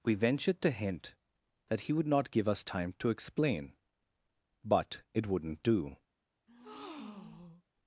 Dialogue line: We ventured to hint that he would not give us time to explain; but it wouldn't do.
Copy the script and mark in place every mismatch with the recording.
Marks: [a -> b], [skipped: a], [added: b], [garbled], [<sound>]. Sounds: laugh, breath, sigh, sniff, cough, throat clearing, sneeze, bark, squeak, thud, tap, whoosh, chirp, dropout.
We ventured to hint that he would not give us time to explain; but it wouldn't do. [breath]